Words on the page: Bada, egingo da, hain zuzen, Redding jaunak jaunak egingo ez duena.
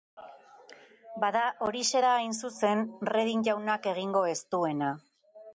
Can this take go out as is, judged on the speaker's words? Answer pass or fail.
fail